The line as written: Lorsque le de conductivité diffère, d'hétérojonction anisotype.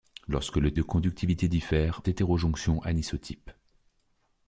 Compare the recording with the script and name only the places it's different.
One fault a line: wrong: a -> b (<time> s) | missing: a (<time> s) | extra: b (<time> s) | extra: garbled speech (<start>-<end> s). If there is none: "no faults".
no faults